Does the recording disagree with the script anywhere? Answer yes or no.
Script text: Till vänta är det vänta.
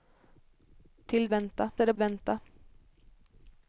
no